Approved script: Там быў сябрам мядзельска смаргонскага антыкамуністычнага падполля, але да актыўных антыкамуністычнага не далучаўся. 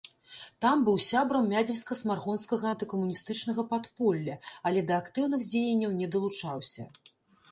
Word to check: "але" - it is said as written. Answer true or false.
true